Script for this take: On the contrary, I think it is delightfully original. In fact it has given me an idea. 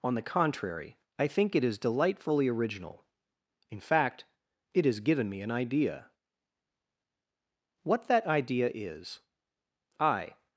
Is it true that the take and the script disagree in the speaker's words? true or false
true